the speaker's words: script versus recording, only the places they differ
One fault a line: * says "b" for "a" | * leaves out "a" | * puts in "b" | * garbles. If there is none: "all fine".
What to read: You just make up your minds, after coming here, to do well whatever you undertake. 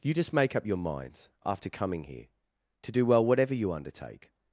all fine